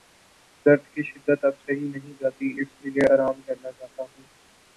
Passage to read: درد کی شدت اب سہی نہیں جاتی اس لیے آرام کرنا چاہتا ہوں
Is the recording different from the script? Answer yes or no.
no